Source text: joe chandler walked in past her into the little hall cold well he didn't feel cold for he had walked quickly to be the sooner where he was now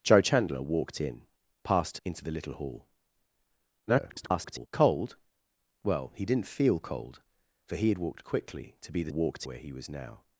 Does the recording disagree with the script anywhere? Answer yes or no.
yes